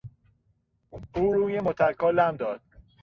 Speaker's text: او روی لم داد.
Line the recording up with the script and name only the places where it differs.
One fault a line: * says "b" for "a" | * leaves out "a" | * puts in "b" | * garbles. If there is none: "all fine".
* puts in "متکا"